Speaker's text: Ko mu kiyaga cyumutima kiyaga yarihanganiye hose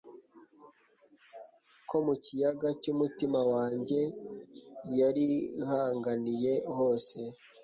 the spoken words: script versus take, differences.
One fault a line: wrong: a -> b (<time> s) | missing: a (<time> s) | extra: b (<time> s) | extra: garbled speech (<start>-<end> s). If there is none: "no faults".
wrong: kiyaga -> wanjye (3.5 s)